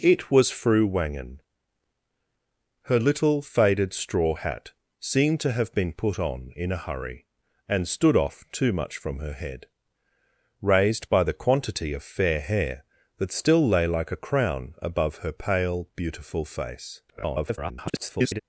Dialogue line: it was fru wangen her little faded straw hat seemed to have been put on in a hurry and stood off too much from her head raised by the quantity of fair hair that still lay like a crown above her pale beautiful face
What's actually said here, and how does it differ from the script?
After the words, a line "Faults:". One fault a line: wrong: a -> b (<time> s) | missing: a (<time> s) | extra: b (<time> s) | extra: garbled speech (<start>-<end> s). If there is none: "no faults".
it was fru wangen her little faded straw hat seemed to have been put on in a hurry and stood off too much from her head raised by the quantity of fair hair that still lay like a crown above her pale beautiful face [garbled]
Faults:
extra: garbled speech (17.1-18.4 s)